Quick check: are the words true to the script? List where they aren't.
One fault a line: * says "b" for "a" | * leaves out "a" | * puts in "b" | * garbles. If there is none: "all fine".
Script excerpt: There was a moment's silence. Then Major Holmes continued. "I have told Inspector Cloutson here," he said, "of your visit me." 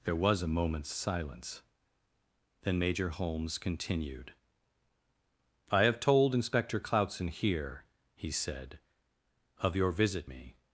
all fine